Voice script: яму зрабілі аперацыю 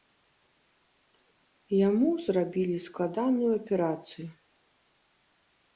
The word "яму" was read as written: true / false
true